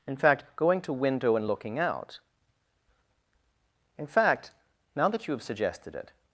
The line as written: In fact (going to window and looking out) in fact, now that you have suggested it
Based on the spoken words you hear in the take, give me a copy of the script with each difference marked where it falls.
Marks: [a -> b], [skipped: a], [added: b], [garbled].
In fact (going to window and looking out) in fact, now that you have suggested it